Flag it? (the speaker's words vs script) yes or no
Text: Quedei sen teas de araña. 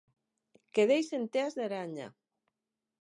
no